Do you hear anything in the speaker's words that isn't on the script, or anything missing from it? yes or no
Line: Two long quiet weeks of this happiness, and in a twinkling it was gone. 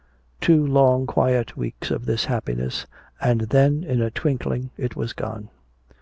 yes